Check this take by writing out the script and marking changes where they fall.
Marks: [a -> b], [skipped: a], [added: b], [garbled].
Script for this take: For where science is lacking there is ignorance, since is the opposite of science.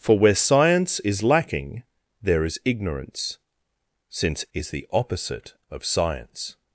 For where science is lacking there is ignorance, since is the opposite of science.